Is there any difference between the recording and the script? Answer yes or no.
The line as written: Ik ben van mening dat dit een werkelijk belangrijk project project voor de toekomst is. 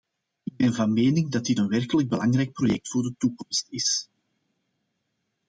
yes